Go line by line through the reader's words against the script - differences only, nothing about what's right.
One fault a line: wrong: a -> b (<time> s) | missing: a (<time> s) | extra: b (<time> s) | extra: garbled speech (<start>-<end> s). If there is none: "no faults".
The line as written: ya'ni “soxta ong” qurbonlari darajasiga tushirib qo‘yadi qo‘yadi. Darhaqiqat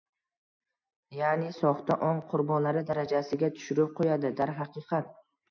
missing: qo‘yadi (4.3 s)